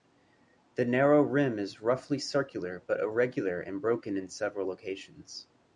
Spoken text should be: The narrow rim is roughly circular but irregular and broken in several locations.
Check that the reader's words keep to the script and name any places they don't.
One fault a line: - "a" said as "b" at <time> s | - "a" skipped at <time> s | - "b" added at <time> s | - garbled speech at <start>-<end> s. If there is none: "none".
none